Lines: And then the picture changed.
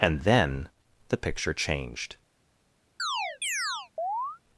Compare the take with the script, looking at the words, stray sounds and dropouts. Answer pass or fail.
fail